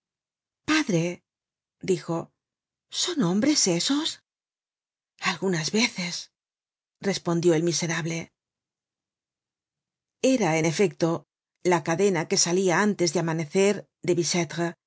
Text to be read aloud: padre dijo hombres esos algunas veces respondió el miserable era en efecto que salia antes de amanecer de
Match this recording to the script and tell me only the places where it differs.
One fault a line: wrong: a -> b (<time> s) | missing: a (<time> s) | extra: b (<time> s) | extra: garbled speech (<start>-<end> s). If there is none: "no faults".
extra: son (2.9 s)
extra: la cadena (11.6 s)